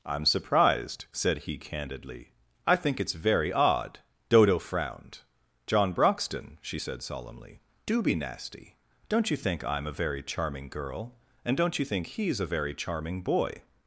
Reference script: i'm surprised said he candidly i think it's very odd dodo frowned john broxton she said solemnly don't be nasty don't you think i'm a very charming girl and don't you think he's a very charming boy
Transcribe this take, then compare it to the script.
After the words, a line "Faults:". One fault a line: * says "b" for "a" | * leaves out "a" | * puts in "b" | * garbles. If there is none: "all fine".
i'm surprised said he candidly i think it's very odd dodo frowned john broxton she said solemnly do be nasty don't you think i'm a very charming girl and don't you think he's a very charming boy
Faults:
* says "do" for "don't"